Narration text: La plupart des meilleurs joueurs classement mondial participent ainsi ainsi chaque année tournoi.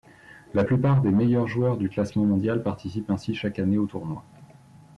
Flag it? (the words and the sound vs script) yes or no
yes